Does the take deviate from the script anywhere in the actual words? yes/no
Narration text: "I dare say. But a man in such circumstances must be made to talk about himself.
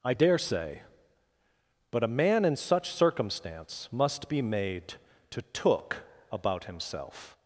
yes